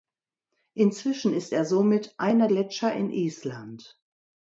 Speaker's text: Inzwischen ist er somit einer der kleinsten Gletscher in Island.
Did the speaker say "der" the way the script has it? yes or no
no